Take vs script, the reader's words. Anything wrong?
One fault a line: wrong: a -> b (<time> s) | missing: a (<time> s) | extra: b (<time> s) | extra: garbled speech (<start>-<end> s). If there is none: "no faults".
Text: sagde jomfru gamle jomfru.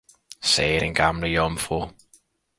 wrong: jomfru -> den (0.8 s)